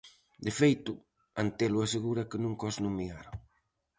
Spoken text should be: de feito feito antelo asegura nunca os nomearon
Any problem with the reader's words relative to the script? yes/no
yes